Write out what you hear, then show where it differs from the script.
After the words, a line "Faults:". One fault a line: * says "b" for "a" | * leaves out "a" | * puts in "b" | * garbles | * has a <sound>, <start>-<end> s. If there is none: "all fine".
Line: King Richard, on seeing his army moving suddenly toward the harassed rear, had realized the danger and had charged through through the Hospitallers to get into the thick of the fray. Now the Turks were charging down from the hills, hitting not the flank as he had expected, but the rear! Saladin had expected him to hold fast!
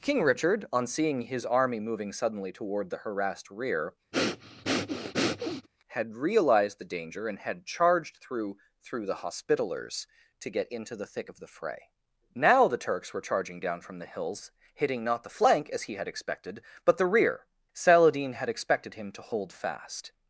King Richard, on seeing his army moving suddenly toward the harassed rear, had realized the danger and had charged through through the Hospitallers to get into the thick of the fray. Now the Turks were charging down from the hills, hitting not the flank as he had expected, but the rear! Saladin had expected him to hold fast!
Faults:
* has a breath, 4.1-5.7 s